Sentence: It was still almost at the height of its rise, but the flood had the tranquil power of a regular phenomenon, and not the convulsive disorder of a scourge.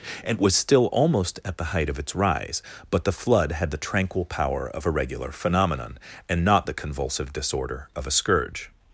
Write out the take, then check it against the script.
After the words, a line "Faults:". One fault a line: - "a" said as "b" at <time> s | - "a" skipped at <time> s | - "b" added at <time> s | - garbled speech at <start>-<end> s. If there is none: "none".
And was still almost at the height of its rise, but the flood had the tranquil power of a regular phenomenon, and not the convulsive disorder of a scourge.
Faults:
- "It" said as "And" at 0.2 s